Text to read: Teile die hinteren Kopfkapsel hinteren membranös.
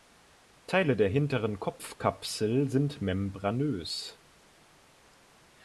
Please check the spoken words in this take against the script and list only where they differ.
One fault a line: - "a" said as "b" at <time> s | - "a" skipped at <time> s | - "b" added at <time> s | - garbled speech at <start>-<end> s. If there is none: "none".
- "die" said as "der" at 0.9 s
- "hinteren" said as "sind" at 2.7 s